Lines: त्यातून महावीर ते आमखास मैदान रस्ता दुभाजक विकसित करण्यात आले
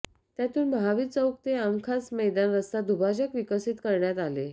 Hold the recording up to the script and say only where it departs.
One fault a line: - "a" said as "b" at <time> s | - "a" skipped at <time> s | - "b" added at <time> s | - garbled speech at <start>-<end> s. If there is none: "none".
- "चौक" added at 1.1 s